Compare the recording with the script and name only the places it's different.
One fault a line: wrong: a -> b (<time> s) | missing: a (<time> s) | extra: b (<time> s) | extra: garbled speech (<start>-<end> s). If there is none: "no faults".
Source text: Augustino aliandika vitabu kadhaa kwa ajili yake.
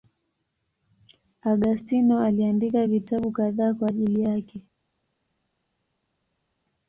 no faults